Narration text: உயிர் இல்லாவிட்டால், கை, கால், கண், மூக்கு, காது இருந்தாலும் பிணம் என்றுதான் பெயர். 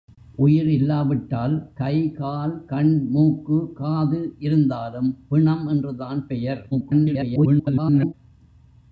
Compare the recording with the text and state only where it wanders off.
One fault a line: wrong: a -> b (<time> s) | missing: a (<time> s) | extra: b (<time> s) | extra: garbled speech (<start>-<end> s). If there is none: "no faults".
extra: garbled speech (6.7-8.1 s)